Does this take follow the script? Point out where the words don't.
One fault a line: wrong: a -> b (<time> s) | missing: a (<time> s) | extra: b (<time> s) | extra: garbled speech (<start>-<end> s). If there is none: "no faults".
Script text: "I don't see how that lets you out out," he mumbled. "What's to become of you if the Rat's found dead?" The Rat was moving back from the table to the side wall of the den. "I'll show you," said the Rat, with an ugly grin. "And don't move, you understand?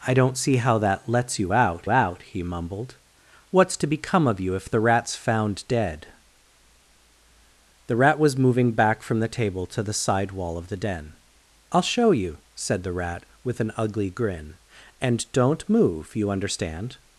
no faults